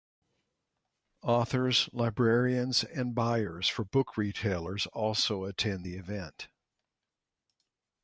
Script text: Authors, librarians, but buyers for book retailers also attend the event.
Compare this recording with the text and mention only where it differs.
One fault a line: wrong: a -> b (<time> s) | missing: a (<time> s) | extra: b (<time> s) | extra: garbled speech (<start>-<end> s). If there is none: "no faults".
wrong: but -> and (2.8 s)